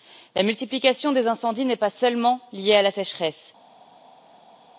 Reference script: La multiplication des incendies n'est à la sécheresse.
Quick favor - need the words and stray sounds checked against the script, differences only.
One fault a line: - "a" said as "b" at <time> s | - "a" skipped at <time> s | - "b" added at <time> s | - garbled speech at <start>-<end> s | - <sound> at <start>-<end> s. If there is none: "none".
- "pas seulement liée" added at 1.8 s